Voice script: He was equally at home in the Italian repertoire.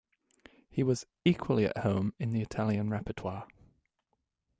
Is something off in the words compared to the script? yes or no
no